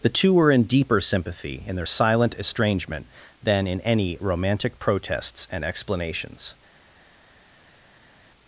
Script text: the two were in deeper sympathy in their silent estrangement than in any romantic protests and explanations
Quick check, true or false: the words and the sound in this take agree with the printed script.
true